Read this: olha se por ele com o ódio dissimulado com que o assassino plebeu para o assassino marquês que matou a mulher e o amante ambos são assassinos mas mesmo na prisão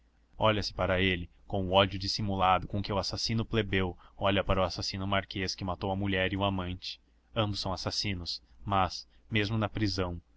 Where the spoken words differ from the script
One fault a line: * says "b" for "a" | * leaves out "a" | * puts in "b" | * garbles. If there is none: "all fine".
* says "para" for "por"
* puts in "olha"